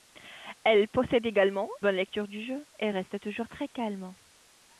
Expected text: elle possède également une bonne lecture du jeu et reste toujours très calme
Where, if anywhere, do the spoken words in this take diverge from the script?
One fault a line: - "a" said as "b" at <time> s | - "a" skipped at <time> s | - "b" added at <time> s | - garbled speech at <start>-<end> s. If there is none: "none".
- "une" skipped at 1.7 s